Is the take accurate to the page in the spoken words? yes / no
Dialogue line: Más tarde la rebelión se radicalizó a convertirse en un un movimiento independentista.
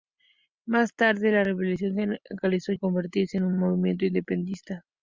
yes